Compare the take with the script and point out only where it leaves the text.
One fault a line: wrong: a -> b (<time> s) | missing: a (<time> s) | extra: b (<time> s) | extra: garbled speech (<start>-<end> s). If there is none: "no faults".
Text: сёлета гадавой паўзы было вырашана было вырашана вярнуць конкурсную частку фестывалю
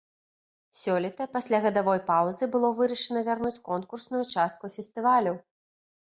extra: пасля (1.4 s)
missing: было вырашана (3.2 s)